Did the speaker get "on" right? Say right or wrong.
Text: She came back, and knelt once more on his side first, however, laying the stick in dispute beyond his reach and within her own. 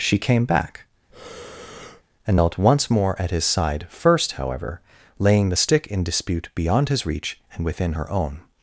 wrong